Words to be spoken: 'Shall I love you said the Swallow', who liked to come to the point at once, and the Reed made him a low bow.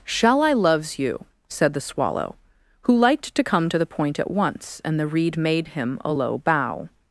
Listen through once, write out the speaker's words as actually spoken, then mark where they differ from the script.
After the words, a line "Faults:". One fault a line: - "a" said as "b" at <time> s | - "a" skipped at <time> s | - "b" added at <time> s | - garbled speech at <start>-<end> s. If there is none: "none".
'Shall I loves you said the Swallow', who liked to come to the point at once, and the Reed made him a low bow.
Faults:
- "love" said as "loves" at 0.5 s